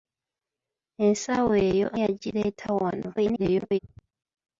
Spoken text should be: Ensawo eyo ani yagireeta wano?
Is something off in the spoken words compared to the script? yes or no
yes